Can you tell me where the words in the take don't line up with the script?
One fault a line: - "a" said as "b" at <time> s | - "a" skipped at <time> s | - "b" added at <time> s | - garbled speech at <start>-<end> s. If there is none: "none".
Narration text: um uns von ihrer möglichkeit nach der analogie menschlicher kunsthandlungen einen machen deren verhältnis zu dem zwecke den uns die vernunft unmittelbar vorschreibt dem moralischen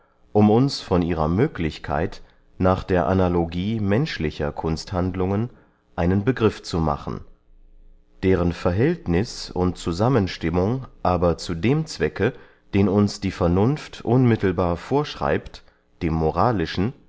- "begriff zu" added at 6.2 s
- "und zusammenstimmung aber" added at 9.5 s